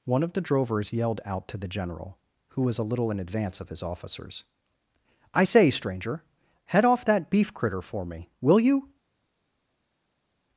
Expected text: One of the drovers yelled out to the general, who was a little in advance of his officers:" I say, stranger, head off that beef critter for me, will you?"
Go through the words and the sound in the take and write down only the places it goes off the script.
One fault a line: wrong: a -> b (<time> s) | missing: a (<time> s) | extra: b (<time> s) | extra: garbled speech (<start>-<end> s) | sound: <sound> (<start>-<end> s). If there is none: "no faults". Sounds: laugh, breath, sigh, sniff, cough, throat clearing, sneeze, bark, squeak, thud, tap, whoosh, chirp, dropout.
no faults